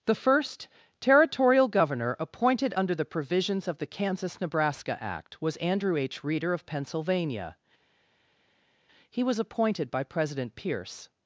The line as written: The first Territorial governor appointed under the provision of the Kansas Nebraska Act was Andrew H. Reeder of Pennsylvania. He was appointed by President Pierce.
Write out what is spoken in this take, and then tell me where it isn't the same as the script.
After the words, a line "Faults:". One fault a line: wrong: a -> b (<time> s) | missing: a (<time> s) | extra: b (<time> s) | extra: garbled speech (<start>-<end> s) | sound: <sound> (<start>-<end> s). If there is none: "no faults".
The first Territorial governor appointed under the provisions of the Kansas Nebraska Act was Andrew H. Reeder of Pennsylvania. He was appointed by President Pierce.
Faults:
wrong: provision -> provisions (3.0 s)